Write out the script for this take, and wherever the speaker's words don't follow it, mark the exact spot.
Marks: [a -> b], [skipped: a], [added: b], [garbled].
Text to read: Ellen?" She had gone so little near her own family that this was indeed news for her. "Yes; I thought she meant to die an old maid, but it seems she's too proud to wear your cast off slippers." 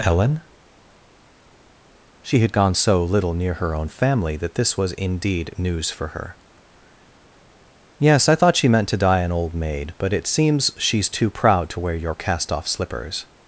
Ellen?" She had gone so little near her own family that this was indeed news for her. "Yes; I thought she meant to die an old maid, but it seems she's too proud to wear your cast off slippers."